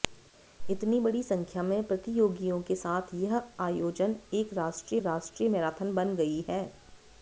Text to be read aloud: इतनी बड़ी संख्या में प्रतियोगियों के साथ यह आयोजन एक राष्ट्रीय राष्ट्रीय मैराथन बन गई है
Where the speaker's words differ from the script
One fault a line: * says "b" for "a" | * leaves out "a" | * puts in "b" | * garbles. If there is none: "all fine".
all fine